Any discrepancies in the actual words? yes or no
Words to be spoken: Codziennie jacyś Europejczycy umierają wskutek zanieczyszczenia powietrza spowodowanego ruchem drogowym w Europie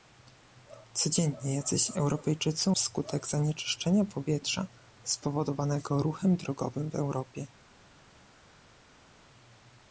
yes